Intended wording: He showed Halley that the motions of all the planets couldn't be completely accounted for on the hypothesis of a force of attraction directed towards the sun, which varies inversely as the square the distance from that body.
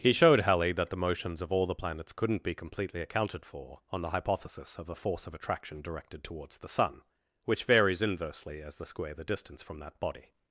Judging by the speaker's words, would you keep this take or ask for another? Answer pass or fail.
pass